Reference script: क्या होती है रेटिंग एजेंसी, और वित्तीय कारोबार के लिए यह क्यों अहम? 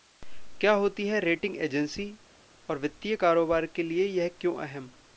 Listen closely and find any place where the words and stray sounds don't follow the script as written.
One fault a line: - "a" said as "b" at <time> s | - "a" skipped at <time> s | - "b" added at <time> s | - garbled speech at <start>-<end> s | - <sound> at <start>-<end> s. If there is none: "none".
none